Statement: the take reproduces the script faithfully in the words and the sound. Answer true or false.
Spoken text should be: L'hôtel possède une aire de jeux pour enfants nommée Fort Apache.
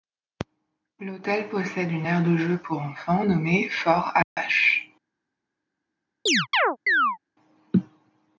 false